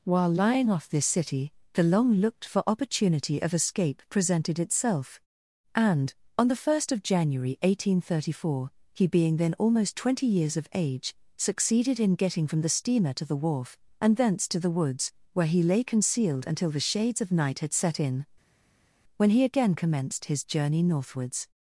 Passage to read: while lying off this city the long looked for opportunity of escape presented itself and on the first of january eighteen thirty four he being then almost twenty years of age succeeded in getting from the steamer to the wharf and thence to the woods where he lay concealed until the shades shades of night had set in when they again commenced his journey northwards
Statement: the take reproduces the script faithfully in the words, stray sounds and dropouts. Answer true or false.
false